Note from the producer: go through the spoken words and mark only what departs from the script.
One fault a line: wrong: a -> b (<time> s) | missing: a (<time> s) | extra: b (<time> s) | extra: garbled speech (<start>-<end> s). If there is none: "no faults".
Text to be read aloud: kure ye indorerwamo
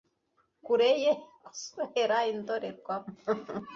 extra: guswera (1.4 s)